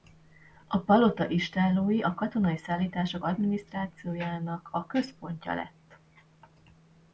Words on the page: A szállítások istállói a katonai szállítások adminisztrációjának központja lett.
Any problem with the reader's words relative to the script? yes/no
yes